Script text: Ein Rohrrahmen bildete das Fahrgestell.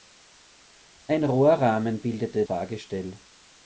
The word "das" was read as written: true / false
false